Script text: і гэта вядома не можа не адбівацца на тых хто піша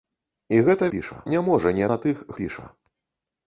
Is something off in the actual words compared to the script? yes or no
yes